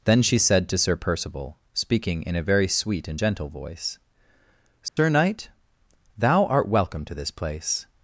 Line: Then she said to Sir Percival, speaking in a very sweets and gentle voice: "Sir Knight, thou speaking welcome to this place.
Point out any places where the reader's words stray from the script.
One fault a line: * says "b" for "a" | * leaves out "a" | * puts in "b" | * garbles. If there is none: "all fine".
* says "sweet" for "sweets"
* says "art" for "speaking"